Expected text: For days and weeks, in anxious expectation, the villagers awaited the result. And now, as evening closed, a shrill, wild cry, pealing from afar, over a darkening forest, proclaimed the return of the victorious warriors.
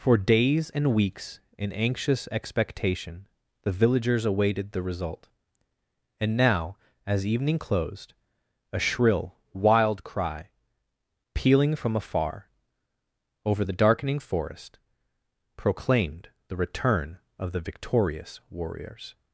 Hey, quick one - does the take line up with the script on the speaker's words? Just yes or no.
no